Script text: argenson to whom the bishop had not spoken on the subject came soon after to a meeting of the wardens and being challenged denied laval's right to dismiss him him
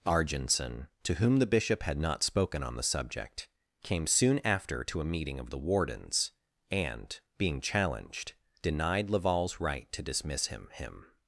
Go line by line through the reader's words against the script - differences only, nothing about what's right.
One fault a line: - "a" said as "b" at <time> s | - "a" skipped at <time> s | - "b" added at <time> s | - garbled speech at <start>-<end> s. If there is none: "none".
none